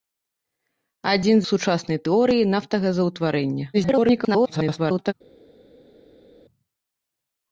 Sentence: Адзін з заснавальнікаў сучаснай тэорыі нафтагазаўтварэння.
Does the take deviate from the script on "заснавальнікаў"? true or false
true